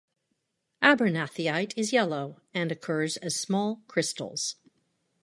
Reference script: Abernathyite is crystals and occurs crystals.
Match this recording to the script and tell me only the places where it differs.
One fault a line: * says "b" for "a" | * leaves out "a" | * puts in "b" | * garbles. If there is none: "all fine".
* says "yellow" for "crystals"
* puts in "as small"